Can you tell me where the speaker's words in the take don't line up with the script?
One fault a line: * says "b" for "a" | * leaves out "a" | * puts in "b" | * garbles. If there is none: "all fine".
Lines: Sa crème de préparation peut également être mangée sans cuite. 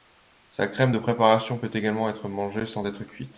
* puts in "être"